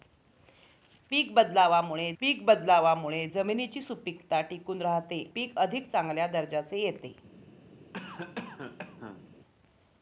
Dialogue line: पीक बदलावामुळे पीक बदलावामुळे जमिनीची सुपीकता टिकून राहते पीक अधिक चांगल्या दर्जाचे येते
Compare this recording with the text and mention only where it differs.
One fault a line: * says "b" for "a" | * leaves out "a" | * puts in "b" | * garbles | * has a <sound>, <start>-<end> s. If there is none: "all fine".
* has a cough, 7.9-9.2 s